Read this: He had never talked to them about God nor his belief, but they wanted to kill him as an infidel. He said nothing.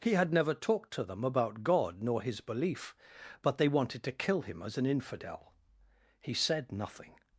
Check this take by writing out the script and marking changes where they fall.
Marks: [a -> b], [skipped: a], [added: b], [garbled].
He had never talked to them about God nor his belief, but they wanted to kill him as an infidel. He said nothing.